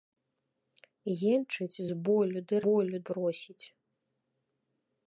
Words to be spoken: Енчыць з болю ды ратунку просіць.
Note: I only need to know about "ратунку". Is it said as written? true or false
false